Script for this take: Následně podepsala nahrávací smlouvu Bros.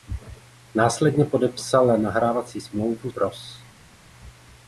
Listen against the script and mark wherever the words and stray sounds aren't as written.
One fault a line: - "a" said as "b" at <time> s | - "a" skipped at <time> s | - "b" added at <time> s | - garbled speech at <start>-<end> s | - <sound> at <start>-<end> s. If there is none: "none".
none